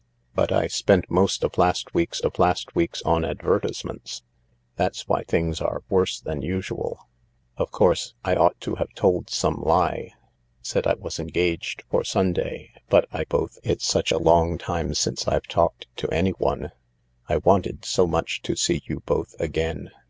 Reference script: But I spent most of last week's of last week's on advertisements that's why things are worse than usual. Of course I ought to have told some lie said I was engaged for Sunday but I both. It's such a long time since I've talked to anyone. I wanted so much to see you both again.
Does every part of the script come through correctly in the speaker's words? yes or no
yes